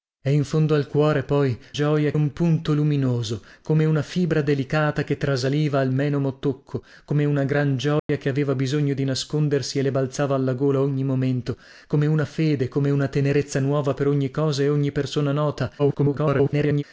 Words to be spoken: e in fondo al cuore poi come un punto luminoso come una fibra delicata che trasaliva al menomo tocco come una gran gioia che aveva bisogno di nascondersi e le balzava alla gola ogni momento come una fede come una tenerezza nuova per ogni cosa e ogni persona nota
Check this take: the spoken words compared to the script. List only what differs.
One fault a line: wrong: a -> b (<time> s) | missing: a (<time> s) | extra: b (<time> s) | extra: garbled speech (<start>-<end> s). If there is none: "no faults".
wrong: come -> gioia (1.7 s)
extra: garbled speech (15.8-16.8 s)